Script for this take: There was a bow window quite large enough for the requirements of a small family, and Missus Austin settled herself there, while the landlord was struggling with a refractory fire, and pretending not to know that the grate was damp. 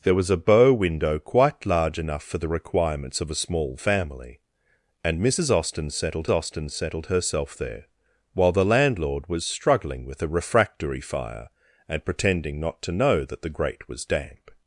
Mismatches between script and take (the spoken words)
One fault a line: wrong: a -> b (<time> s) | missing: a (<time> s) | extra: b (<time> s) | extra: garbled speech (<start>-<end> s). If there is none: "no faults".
extra: Austin settled (6.3 s)